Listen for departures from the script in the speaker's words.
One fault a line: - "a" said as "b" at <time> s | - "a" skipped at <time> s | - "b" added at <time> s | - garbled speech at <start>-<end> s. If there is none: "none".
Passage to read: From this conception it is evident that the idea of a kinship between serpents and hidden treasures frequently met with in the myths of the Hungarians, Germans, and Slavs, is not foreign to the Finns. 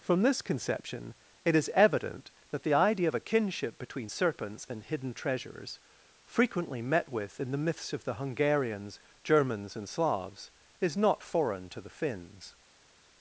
none